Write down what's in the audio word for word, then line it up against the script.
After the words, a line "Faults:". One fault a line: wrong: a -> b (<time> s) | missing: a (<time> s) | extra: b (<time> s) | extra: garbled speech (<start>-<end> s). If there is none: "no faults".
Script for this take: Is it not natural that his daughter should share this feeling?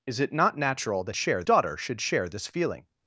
Is it not natural that share daughter should share this feeling?
Faults:
wrong: his -> share (1.2 s)